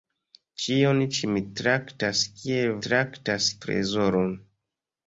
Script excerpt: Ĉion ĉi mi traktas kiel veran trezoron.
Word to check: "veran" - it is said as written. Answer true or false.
false